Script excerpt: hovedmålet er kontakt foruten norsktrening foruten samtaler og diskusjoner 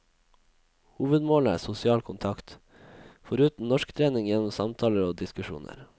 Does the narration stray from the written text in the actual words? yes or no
yes